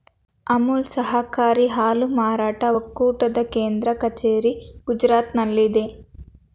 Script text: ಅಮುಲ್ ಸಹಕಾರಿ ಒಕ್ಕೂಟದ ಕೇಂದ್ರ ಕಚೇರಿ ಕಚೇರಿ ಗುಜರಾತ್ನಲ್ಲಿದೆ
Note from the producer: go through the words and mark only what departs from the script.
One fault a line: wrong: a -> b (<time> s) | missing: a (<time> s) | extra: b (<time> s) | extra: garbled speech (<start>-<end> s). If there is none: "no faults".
extra: ಹಾಲು ಮಾರಾಟ (1.7 s)
missing: ಕಚೇರಿ (4.5 s)